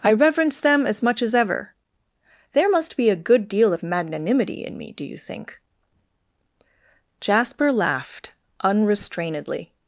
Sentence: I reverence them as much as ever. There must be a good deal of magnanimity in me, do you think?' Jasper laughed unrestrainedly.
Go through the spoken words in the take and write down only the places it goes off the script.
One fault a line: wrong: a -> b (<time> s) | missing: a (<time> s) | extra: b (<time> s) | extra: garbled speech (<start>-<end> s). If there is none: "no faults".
no faults